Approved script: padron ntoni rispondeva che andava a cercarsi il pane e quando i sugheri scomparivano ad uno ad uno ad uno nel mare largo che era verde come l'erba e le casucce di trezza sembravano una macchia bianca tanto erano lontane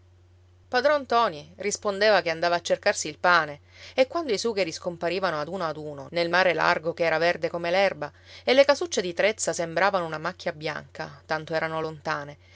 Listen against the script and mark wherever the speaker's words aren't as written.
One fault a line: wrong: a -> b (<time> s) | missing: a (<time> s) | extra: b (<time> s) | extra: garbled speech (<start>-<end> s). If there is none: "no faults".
missing: ad uno (6.1 s)